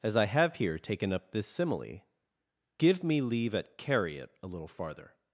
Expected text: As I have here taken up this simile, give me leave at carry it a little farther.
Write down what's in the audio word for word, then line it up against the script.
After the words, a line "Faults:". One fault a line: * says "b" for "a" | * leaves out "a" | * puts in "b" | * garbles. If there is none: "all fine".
As I have here taken up this simile, give me leave at carry it a little farther.
Faults:
all fine